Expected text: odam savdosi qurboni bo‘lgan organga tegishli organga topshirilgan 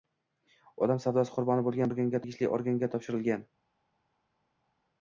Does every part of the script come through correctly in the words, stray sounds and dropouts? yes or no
yes